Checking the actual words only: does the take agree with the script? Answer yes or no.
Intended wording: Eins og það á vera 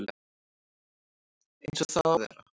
yes